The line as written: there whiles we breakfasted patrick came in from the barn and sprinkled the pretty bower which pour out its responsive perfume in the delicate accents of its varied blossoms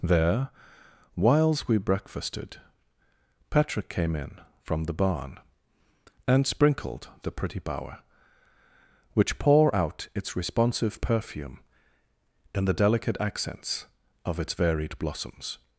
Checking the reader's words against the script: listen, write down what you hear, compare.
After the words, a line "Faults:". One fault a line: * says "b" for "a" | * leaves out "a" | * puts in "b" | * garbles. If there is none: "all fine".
there whiles we breakfasted patrick came in from the barn and sprinkled the pretty bower which pour out its responsive perfume in the delicate accents of its varied blossoms
Faults:
all fine